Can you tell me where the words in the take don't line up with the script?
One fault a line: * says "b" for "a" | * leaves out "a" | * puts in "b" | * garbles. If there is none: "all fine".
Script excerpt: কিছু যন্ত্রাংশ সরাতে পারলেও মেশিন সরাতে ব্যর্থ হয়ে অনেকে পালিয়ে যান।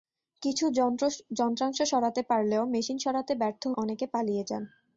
* leaves out "হয়ে"